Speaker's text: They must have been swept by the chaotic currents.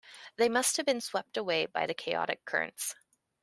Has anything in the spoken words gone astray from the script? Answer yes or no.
yes